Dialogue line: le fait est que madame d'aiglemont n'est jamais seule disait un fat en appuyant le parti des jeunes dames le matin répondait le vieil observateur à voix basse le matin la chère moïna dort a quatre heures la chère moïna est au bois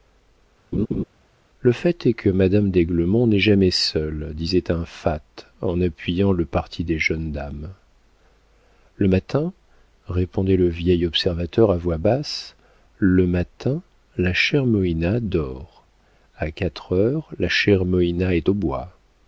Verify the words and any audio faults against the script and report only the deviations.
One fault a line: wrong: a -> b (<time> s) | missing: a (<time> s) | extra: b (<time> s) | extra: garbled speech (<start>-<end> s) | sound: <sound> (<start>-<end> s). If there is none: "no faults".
sound: laugh (0.7-1.0 s)